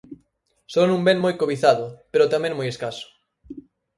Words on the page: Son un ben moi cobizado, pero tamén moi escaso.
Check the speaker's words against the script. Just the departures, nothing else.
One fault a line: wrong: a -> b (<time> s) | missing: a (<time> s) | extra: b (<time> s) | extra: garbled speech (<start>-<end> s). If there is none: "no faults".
no faults